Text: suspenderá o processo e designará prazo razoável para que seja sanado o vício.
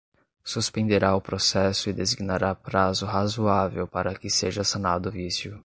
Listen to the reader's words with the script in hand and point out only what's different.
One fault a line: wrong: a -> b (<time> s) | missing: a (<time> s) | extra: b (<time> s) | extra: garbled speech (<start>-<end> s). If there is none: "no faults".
no faults